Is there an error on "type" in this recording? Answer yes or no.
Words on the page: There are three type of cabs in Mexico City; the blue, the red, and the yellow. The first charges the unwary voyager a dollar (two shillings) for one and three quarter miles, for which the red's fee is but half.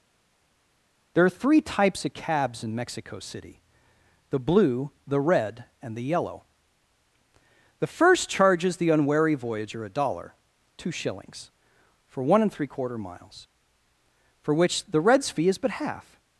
yes